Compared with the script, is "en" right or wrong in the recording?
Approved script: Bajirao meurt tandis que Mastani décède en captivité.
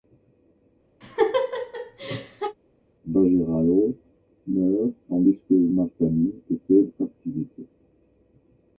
wrong